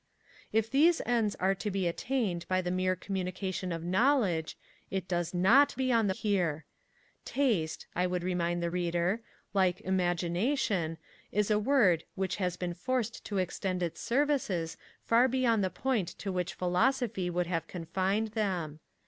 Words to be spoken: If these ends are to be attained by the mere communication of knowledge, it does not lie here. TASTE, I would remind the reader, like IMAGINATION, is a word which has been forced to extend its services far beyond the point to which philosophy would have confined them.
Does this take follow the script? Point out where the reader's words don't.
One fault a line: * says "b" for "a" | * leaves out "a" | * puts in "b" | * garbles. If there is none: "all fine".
* says "beyond" for "lie"